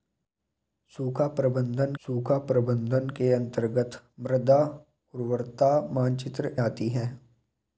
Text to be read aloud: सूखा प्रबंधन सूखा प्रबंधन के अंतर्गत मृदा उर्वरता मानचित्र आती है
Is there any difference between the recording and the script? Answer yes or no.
no